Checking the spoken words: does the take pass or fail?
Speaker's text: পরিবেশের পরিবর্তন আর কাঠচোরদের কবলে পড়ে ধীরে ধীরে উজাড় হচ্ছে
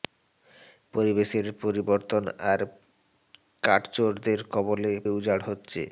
fail